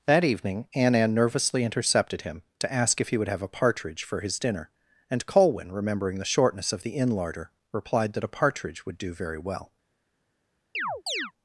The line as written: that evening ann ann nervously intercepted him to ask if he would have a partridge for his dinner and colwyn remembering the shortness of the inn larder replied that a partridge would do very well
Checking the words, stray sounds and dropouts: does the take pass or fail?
fail